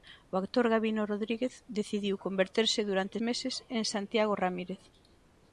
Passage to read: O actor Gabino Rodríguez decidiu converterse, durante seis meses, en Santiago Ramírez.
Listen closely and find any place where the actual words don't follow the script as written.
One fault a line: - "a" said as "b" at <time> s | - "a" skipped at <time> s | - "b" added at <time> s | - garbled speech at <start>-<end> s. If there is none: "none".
- "seis" skipped at 3.2 s